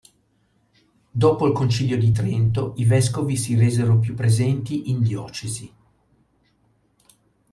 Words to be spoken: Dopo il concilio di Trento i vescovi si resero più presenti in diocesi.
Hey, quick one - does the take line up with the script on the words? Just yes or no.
yes